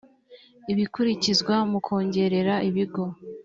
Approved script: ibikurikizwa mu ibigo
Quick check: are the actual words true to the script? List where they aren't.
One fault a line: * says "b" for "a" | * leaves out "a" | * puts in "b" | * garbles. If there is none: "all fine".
* puts in "kongerera"